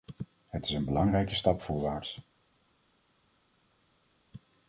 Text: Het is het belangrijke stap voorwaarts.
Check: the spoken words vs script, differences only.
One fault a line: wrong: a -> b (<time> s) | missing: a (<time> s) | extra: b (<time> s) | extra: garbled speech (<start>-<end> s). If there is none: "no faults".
wrong: het -> een (0.7 s)